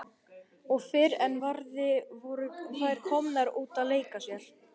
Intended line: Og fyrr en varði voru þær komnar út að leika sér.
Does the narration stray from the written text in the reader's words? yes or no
no